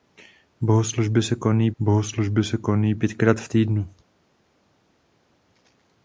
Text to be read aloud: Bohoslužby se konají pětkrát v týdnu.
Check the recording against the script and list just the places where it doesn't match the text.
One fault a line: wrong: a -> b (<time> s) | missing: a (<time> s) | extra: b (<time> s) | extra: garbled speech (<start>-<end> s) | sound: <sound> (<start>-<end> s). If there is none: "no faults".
extra: bohoslužby se konají (1.8 s)